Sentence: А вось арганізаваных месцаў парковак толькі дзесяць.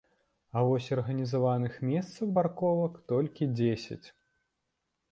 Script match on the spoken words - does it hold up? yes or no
yes